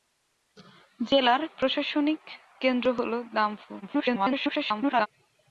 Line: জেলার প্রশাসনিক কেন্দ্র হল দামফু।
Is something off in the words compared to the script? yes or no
yes